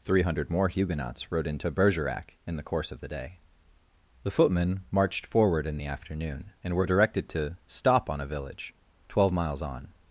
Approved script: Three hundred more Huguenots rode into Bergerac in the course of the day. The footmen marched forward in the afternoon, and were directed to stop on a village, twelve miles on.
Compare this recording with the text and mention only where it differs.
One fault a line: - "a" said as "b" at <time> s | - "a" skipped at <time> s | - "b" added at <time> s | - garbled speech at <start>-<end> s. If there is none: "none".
none